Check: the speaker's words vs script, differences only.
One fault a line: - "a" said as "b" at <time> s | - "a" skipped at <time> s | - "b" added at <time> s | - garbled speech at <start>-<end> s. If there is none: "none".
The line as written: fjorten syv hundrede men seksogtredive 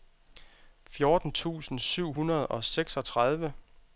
- "tusind" added at 1.3 s
- "men" said as "og" at 2.5 s